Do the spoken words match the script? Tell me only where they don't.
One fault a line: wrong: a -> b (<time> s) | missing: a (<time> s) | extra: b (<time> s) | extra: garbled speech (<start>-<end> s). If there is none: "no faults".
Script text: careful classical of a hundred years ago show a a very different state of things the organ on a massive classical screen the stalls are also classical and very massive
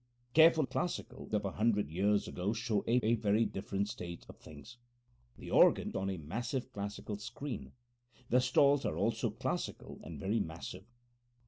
no faults